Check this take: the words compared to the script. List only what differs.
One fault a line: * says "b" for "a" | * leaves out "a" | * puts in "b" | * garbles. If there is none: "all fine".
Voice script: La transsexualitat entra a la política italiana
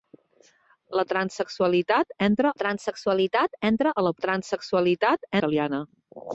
* puts in "transsexualitat entra"
* says "transsexualitat" for "política"